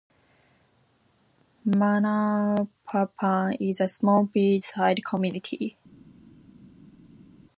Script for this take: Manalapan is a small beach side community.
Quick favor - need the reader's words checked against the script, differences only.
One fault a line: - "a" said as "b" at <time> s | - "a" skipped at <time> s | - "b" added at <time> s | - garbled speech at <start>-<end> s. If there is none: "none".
none